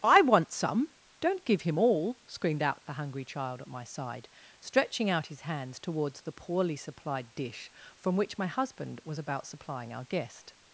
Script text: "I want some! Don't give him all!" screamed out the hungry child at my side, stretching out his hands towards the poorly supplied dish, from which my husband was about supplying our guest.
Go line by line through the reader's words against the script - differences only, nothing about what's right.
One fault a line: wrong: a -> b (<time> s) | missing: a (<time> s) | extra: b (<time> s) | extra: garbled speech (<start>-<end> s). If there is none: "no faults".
no faults